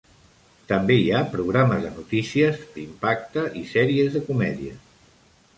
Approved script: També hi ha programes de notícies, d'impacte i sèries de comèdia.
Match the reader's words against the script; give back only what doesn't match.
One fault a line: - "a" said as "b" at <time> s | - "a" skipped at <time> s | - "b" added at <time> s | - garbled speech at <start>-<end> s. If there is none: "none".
none